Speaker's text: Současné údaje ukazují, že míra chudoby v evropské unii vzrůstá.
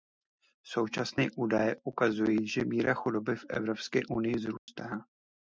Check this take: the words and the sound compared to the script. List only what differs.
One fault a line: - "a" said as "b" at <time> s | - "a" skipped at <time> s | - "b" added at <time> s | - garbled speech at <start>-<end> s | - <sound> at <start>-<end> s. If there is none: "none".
- dropout at 4.6-4.7 s